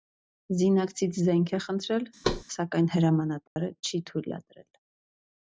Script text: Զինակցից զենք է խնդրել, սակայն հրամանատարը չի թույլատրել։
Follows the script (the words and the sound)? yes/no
no